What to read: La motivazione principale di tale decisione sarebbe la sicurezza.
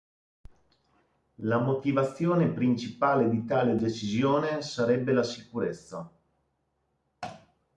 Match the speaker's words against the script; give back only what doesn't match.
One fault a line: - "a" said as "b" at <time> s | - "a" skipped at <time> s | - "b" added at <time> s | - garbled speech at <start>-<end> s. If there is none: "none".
none